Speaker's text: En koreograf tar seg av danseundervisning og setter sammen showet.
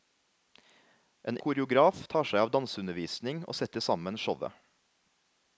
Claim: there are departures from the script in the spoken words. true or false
false